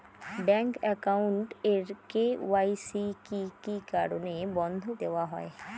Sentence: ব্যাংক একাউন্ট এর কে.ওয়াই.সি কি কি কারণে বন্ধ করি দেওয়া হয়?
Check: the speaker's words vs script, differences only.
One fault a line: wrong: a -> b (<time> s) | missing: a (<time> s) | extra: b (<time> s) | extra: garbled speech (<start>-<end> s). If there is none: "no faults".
missing: করি (4.8 s)